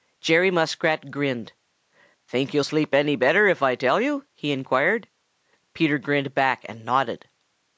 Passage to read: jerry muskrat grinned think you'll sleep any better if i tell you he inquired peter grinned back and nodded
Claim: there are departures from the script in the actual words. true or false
false